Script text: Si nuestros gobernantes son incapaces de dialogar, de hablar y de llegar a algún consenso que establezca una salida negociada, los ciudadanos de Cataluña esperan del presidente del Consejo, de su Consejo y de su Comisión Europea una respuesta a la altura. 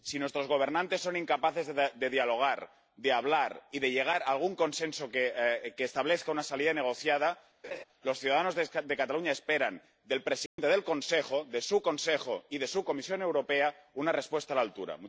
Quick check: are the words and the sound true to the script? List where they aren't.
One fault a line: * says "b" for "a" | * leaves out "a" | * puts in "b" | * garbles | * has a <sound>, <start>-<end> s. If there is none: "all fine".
* has a laugh, 7.6-7.8 s
* has a dropout, 10.5-10.6 s